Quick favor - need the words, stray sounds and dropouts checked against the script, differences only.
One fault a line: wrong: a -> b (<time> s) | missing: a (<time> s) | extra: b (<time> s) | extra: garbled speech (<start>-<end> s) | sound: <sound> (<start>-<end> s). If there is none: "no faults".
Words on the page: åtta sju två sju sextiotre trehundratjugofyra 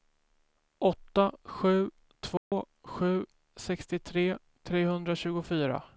sound: dropout (2.4-2.5 s)